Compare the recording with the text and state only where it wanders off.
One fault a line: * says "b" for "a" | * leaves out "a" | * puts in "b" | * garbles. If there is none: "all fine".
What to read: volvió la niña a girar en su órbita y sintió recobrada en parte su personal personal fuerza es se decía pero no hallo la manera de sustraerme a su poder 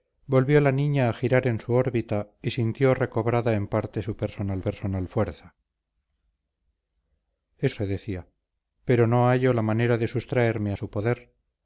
all fine